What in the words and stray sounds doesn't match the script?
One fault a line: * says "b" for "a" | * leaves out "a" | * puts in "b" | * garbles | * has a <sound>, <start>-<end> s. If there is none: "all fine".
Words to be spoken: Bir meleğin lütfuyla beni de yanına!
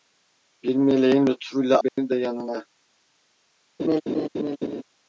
* has a dropout, 1.9-2.0 s
* has a laugh, 3.8-4.8 s